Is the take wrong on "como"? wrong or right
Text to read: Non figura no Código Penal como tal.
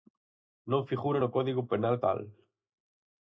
wrong